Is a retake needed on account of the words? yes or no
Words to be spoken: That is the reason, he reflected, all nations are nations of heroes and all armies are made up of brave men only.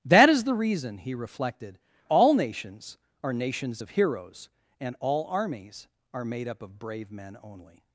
no